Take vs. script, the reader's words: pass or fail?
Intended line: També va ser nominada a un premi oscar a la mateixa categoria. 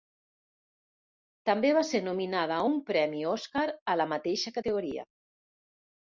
pass